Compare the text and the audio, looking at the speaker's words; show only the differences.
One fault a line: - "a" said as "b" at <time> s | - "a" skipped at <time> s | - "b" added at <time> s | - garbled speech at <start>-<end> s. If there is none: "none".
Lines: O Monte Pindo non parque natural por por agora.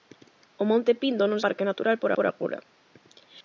none